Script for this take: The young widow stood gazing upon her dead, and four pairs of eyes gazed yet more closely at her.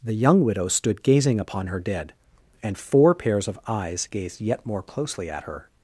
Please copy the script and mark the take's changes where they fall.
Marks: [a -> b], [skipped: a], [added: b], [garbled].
The young widow stood gazing upon her dead, and four pairs of eyes gazed yet more closely at her.